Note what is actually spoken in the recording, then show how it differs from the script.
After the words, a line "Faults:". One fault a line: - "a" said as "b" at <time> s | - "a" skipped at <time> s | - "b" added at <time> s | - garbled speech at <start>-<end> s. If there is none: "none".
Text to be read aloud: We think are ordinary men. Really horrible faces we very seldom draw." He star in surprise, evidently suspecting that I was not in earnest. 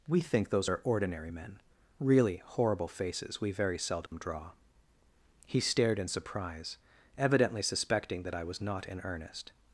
We think those are ordinary men. Really horrible faces we very seldom draw." He stared in surprise, evidently suspecting that I was not in earnest.
Faults:
- "those" added at 0.5 s
- "star" said as "stared" at 5.6 s